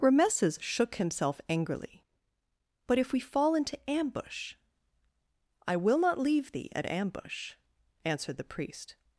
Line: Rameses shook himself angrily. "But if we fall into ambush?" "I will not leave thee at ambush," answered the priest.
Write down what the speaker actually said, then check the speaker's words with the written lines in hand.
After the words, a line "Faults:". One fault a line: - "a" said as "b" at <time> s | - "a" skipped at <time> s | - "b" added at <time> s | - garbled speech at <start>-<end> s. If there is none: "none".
Rameses shook himself angrily. "But if we fall into ambush?" "I will not leave thee at ambush," answered the priest.
Faults:
none